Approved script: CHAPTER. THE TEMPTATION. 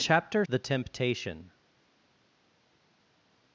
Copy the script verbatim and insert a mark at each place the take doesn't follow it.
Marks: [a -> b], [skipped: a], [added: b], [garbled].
CHAPTER. THE TEMPTATION.